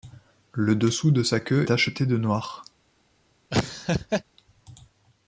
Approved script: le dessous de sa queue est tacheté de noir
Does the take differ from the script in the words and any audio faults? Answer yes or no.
yes